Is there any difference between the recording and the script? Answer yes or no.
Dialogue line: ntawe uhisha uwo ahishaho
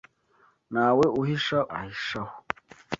yes